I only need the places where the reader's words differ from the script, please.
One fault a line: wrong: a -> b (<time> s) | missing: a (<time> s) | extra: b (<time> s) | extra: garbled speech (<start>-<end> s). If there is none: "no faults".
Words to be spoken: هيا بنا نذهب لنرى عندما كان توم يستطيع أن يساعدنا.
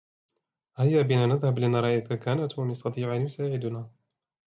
wrong: عندما -> إذا (2.0 s)